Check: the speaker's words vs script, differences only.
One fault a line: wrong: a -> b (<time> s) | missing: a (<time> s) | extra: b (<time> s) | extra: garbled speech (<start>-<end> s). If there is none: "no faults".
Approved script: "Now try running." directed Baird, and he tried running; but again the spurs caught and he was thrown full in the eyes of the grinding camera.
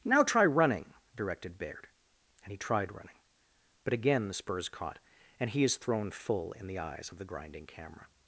wrong: was -> is (5.6 s)